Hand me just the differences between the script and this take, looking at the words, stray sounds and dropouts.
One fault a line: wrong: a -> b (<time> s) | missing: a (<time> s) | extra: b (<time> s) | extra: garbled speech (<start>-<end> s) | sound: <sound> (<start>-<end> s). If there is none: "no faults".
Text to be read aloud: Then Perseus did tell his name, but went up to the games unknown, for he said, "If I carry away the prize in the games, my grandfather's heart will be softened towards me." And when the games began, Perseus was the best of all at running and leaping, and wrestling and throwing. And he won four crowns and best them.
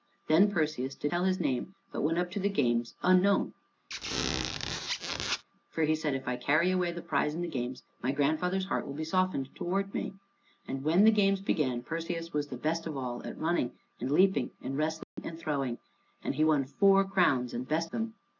sound: squeak (3.9-5.4 s)
sound: dropout (15.0-15.2 s)